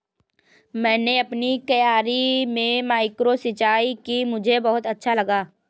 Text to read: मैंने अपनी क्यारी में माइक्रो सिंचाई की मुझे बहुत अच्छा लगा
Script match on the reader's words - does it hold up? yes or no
yes